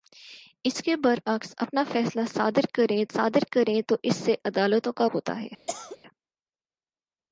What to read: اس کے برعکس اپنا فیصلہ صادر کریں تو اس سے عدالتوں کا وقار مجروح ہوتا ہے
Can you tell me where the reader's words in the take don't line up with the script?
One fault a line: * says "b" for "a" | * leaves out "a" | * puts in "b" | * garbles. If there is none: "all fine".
* puts in "صادر کریں"
* leaves out "وقار مجروح"